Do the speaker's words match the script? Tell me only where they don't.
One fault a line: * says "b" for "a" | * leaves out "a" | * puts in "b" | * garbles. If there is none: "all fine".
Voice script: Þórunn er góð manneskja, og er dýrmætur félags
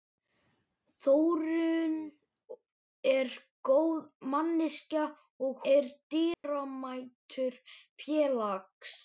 all fine